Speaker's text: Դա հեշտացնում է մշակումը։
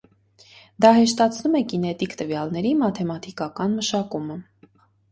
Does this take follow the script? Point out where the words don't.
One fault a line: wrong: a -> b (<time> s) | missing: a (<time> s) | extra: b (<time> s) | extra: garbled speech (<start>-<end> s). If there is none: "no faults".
extra: կինետիկ տվյալների մաթեմատիկական (1.8 s)